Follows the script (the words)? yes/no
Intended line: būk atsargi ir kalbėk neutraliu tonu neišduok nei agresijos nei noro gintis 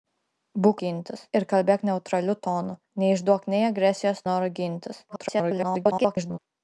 no